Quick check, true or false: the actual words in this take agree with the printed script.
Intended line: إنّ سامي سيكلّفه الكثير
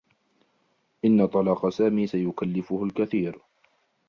false